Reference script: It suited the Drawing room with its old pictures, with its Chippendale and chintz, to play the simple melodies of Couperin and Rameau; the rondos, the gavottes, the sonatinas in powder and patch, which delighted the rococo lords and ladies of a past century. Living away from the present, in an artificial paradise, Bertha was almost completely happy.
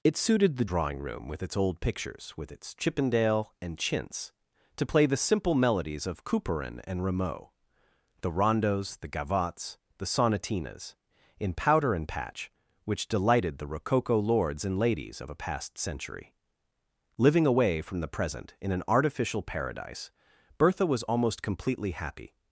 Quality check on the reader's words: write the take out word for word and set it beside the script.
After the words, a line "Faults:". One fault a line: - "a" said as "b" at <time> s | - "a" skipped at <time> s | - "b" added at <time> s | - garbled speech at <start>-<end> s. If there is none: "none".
It suited the Drawing room with its old pictures, with its Chippendale and chintz, to play the simple melodies of Couperin and Rameau; the rondos, the gavottes, the sonatinas in powder and patch, which delighted the rococo lords and ladies of a past century. Living away from the present, in an artificial paradise, Bertha was almost completely happy.
Faults:
none